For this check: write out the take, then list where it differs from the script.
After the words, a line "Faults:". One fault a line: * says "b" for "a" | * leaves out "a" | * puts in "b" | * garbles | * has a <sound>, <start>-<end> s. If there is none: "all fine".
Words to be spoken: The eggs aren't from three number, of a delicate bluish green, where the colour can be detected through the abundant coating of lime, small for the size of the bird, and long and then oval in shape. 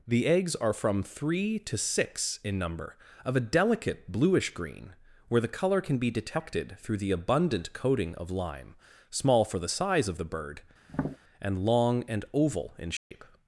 The eggs are from three to six in number, of a delicate bluish green, where the colour can be detected through the abundant coating of lime, small for the size of the bird, and long and oval in shape.
Faults:
* says "are" for "aren't"
* puts in "to six in"
* has a tap, 10.9-11.2 s
* leaves out "then"
* has a dropout, 13.0-13.1 s